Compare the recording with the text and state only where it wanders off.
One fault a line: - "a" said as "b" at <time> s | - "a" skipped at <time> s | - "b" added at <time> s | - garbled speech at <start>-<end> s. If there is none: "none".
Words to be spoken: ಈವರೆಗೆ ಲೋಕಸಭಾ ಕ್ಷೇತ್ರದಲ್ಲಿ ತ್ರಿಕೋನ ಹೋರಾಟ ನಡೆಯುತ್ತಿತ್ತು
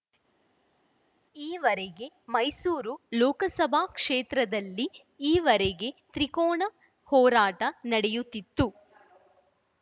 - "ಮೈಸೂರು" added at 2.3 s
- "ಈವರೆಗೆ" added at 5.3 s